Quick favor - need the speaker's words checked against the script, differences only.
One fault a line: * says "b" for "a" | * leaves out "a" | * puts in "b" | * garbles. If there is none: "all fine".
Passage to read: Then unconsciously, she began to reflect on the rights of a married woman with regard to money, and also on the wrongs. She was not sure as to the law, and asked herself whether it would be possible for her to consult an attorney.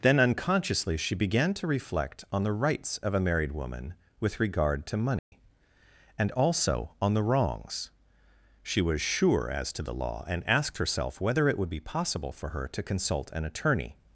* leaves out "not"